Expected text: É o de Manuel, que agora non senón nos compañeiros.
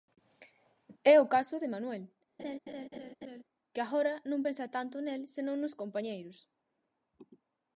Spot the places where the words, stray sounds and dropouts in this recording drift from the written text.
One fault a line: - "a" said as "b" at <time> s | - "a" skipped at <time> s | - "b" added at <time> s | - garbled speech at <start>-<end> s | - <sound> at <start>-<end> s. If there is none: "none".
- "caso" added at 1.4 s
- laugh at 2.4-3.4 s
- "pensa tanto nel" added at 4.4 s